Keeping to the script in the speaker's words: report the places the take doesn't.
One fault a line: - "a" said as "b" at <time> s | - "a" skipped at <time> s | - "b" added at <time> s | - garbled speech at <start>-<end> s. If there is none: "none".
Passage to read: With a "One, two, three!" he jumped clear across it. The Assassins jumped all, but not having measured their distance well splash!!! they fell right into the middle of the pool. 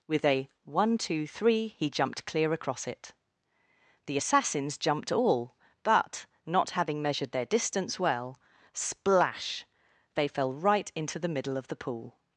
none